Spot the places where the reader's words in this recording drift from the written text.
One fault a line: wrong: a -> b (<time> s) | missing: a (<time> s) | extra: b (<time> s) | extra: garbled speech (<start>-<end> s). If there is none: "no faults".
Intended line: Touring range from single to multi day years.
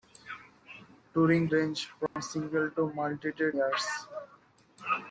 no faults